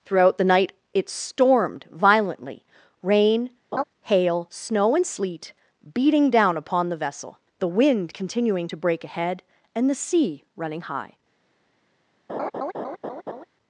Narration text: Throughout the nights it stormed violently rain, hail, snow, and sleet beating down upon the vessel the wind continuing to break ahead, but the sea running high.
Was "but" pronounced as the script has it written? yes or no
no